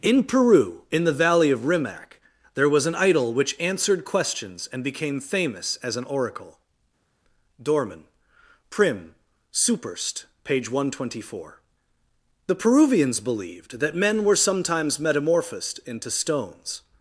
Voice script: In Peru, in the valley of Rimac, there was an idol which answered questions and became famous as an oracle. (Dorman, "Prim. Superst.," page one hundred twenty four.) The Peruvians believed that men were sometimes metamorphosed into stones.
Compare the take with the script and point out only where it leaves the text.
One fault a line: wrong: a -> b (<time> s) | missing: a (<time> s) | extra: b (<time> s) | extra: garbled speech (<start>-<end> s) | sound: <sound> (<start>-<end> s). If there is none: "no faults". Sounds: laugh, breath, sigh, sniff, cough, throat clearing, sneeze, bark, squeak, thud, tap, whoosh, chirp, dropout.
no faults